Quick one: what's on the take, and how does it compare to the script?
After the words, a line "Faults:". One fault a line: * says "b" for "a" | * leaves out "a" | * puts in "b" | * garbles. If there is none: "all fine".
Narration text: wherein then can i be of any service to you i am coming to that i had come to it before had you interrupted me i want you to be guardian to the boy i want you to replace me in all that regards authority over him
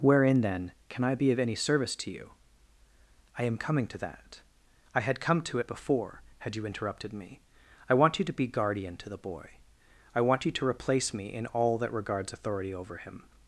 wherein then can i be of any service to you i am coming to that i had come to it before had you interrupted me i want you to be guardian to the boy i want you to replace me in all that regards authority over him
Faults:
all fine